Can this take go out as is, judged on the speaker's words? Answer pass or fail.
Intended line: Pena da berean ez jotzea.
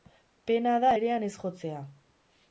pass